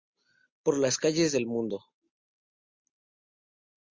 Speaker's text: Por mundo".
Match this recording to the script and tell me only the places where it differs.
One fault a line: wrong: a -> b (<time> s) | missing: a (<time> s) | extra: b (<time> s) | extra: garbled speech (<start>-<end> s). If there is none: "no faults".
extra: las calles del (0.8 s)